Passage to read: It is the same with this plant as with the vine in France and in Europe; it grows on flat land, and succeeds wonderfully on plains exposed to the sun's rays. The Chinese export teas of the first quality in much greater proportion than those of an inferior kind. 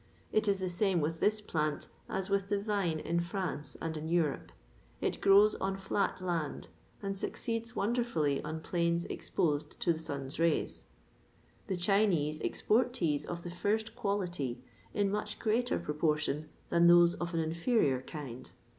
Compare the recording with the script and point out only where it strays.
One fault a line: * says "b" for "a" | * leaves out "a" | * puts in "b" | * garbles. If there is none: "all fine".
all fine